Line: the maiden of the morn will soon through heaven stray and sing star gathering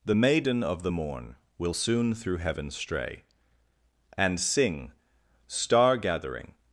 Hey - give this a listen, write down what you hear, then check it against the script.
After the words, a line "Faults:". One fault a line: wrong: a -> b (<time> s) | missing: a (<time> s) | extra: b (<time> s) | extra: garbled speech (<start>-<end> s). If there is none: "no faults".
the maiden of the morn will soon through heaven stray and sing star gathering
Faults:
no faults